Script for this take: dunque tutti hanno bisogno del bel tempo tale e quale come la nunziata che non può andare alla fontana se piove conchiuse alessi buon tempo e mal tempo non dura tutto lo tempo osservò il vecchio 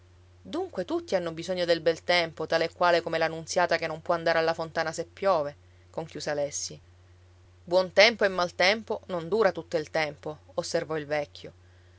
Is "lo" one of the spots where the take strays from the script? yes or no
yes